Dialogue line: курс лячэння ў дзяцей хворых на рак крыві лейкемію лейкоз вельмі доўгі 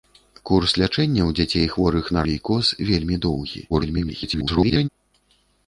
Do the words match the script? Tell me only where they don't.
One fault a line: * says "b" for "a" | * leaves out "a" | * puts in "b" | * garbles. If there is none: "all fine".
* leaves out "рак крыві лейкемію"
* garbles